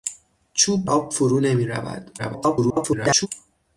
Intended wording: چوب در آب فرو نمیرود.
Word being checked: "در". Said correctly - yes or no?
no